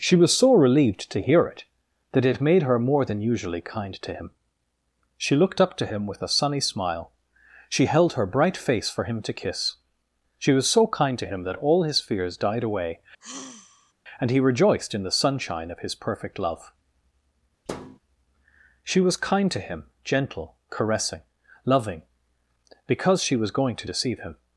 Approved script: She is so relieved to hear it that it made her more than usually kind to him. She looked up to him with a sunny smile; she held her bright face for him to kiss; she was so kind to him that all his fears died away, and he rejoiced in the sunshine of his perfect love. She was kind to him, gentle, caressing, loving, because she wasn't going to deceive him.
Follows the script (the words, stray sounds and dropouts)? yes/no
no